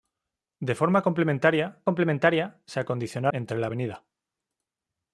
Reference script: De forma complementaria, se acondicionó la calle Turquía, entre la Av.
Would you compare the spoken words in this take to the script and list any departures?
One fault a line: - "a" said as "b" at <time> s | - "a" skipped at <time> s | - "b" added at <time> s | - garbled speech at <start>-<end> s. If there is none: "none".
- "complementaria" added at 1.8 s
- "la calle Turquía" skipped at 3.3 s